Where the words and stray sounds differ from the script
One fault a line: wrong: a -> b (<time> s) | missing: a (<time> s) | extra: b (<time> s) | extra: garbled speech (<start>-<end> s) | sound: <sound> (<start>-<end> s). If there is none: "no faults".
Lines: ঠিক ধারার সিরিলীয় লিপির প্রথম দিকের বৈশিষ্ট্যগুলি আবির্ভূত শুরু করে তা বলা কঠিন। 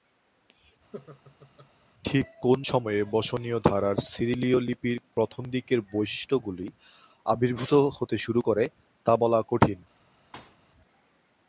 sound: laugh (0.9-1.7 s)
extra: কোন সময়ে বসনীয় (2.4 s)
extra: হতে (8.0 s)
sound: thud (10.3-10.6 s)